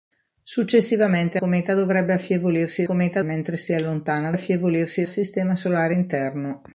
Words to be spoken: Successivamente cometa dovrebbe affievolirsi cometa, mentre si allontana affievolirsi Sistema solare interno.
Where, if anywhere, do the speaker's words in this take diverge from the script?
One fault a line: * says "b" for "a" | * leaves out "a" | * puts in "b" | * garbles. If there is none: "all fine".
all fine